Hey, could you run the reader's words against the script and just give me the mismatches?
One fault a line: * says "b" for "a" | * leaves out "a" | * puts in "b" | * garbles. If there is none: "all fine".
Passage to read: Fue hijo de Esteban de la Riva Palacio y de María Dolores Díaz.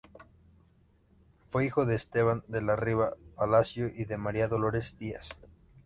all fine